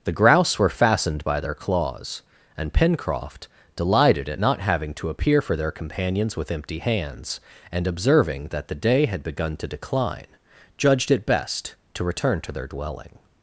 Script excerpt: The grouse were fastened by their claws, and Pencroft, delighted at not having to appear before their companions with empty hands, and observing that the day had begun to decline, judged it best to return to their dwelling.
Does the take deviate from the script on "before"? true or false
true